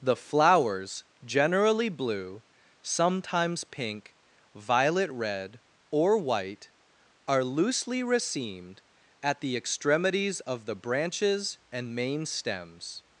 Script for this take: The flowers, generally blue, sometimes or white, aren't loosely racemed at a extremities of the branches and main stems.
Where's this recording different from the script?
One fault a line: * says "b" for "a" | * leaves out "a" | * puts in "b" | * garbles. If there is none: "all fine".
* puts in "pink violet red"
* says "are" for "aren't"
* says "the" for "a"